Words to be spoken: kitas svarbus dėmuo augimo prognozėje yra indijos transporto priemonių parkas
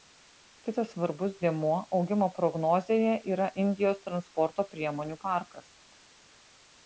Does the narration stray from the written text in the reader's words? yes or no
no